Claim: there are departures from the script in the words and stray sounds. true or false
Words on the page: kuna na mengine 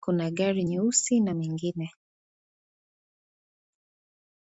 true